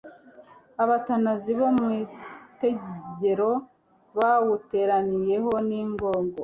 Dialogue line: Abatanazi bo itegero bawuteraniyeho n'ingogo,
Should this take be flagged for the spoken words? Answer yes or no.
yes